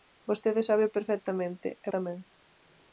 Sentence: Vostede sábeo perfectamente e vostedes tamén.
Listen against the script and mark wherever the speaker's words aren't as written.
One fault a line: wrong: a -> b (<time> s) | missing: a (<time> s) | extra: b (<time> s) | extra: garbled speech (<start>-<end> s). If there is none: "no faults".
missing: vostedes (1.9 s)